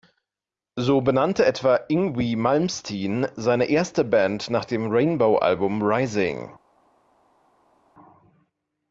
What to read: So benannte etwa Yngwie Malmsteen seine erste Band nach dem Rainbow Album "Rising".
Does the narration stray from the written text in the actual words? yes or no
no